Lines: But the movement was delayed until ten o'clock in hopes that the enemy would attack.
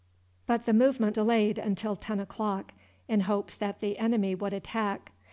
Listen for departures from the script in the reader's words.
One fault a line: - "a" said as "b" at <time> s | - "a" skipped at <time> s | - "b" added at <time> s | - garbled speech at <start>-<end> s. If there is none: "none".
- "was" skipped at 1.1 s